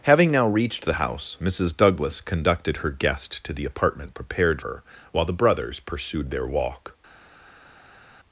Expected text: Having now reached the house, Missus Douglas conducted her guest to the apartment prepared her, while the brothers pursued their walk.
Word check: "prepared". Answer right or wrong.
right